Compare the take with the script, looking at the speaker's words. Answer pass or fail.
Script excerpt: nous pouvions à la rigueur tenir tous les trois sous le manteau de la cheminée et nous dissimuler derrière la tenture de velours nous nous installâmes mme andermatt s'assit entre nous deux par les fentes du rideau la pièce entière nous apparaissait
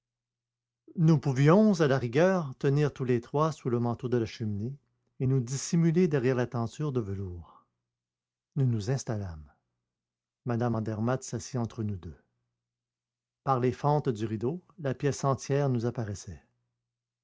pass